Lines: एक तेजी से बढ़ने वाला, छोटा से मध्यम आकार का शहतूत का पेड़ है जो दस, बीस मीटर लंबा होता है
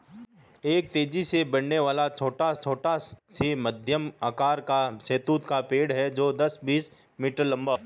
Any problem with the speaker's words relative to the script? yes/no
yes